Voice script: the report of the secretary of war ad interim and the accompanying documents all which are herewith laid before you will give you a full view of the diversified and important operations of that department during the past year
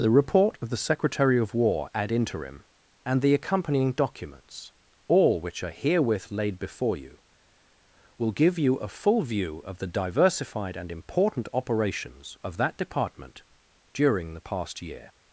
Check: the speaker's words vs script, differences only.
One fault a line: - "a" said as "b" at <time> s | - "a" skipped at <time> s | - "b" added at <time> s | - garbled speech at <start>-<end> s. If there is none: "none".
none